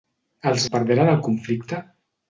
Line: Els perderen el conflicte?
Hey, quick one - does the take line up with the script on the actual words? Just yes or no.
yes